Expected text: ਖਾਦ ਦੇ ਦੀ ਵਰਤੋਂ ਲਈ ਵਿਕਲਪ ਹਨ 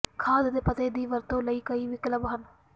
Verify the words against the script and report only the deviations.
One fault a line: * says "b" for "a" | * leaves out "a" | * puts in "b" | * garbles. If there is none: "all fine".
* puts in "ਪੱਤੇ"
* puts in "ਕਈ"